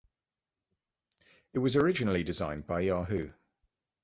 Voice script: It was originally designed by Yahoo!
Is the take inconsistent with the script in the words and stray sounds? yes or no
no